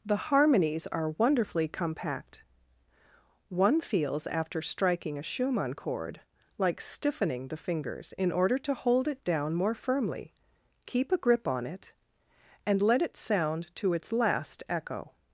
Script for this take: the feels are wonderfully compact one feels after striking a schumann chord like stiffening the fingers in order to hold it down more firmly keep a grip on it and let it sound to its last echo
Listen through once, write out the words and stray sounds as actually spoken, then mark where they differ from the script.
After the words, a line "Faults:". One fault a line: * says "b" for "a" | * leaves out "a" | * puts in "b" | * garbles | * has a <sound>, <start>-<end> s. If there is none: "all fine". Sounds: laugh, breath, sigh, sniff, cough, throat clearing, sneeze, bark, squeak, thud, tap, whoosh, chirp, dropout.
the harmonies are wonderfully compact one feels after striking a schumann chord like stiffening the fingers in order to hold it down more firmly keep a grip on it and let it sound to its last echo
Faults:
* says "harmonies" for "feels"